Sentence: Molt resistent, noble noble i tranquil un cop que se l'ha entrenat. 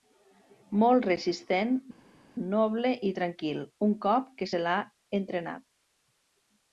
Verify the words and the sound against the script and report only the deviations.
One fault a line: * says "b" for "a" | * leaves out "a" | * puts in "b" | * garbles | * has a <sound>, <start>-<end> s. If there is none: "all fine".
* leaves out "noble"